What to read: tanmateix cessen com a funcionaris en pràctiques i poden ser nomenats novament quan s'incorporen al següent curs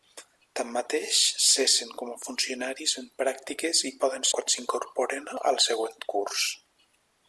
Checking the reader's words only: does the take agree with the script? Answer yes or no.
no